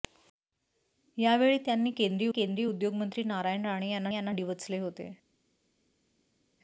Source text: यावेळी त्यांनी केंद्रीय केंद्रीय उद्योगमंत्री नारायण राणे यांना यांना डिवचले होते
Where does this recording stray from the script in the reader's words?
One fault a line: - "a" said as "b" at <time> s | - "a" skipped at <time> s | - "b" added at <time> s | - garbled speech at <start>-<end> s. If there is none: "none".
none